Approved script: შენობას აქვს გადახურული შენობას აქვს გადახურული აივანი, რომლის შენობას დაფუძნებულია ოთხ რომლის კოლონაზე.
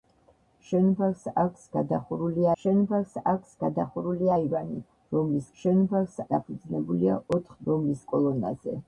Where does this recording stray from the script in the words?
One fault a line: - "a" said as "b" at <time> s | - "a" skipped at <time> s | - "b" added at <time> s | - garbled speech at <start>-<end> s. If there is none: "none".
none